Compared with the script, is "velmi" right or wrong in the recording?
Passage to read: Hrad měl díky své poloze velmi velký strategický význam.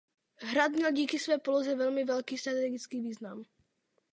right